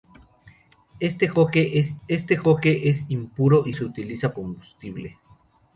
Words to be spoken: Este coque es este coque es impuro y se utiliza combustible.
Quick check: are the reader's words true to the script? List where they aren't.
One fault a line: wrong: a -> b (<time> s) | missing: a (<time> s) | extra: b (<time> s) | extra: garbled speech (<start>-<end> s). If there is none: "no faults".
no faults